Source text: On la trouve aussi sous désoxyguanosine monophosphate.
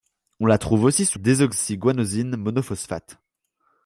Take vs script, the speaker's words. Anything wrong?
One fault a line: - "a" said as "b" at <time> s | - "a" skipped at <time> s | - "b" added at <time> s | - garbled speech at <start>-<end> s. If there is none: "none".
none